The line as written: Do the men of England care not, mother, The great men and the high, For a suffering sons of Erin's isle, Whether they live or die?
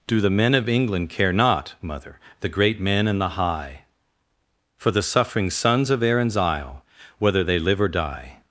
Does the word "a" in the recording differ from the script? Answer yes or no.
yes